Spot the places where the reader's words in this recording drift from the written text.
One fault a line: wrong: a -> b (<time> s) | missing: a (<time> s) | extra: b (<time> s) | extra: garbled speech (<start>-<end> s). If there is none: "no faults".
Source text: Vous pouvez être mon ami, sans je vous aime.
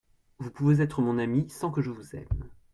extra: que (1.7 s)